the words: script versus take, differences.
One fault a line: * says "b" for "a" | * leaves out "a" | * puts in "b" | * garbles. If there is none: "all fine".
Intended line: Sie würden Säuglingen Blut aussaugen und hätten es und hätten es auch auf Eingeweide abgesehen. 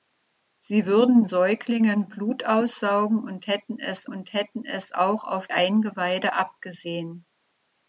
all fine